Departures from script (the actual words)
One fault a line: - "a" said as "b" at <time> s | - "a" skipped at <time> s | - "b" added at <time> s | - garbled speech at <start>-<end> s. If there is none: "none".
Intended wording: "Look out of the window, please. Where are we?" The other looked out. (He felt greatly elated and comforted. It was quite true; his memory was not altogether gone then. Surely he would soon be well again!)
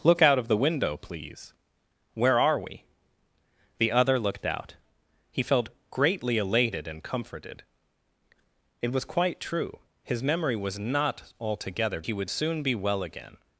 - "gone then Surely" skipped at 12.0 s